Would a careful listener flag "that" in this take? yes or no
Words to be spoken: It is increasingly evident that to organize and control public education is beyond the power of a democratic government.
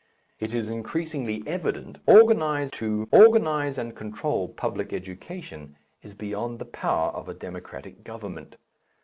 yes